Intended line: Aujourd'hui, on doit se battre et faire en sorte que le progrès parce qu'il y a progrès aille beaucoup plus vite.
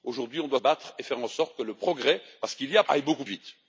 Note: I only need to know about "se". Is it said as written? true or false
false